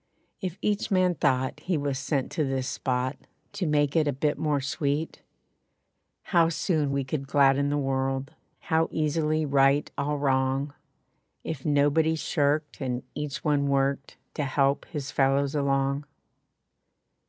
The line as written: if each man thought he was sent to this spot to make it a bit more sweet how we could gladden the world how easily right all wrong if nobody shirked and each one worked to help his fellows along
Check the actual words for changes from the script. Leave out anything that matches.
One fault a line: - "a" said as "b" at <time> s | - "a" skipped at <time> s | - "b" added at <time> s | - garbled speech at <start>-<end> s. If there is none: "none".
- "soon" added at 6.5 s